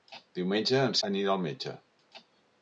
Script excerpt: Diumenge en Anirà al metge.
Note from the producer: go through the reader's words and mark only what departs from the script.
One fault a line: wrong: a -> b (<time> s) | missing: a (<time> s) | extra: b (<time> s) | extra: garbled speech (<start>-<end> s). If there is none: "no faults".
no faults